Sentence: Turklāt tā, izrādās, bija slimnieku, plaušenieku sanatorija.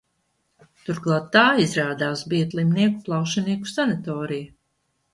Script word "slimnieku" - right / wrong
right